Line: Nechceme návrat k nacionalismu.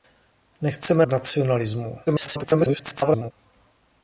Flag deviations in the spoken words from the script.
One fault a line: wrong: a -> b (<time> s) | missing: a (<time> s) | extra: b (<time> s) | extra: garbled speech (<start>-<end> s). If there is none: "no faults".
missing: návrat (1.1 s)
extra: garbled speech (2.1-3.3 s)